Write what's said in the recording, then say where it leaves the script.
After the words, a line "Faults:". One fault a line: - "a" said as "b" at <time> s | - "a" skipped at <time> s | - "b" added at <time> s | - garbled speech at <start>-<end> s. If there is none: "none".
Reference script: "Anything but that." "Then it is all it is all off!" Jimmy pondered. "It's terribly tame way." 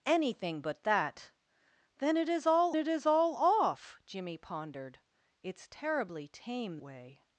"Anything but that." "Then it is all it is all off!" Jimmy pondered. "It's terribly tame way."
Faults:
none